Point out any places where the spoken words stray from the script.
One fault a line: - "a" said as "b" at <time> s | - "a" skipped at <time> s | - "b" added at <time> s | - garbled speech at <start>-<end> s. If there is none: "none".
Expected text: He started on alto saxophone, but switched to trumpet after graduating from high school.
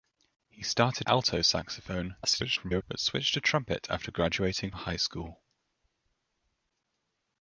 - "on" skipped at 1.1 s
- garbled speech at 2.2-2.8 s
- "from" skipped at 4.7 s